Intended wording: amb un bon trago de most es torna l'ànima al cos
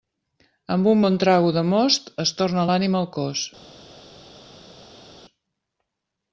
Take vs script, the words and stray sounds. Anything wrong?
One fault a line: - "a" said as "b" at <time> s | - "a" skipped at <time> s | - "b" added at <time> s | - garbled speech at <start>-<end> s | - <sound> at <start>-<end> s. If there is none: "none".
none